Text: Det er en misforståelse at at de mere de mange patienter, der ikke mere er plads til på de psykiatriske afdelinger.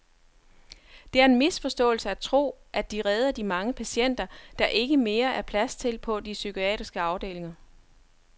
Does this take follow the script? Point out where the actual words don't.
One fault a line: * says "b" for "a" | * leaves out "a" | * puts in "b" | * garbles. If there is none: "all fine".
* puts in "tro"
* says "redder" for "mere"